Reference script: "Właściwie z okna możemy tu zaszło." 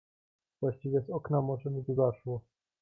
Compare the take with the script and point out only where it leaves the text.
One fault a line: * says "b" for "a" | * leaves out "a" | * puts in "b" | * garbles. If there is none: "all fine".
all fine